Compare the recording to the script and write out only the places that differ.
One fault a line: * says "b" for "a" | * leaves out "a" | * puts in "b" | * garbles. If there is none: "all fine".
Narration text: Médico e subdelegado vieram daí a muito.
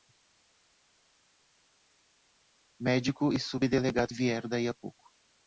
* says "pouco" for "muito"